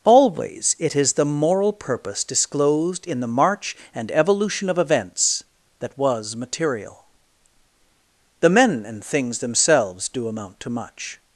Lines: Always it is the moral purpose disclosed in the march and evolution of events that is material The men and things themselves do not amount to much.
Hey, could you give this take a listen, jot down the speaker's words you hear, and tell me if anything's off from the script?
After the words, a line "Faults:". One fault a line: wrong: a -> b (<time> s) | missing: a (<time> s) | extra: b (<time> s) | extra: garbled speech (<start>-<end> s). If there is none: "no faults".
Always it is the moral purpose disclosed in the march and evolution of events that was material The men and things themselves do amount to much.
Faults:
wrong: is -> was (6.0 s)
missing: not (10.3 s)